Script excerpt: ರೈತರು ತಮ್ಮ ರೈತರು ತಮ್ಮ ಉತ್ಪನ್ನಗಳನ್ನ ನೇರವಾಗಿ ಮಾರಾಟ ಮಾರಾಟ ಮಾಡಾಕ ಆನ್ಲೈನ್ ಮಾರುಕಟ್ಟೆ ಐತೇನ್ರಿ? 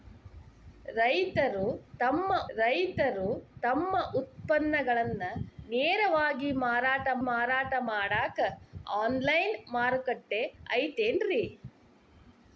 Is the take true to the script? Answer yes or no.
yes